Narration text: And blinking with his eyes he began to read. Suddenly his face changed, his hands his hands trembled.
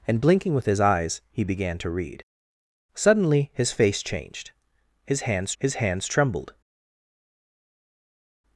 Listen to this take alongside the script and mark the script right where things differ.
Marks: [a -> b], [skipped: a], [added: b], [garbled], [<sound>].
And blinking with his eyes he began to read. Suddenly his face changed, his hands his hands trembled.